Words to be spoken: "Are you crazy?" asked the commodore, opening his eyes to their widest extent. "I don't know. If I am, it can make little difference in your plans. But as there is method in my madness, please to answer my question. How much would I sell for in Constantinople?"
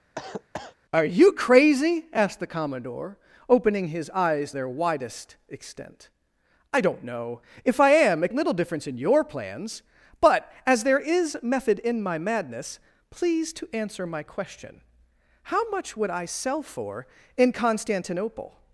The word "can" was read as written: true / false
false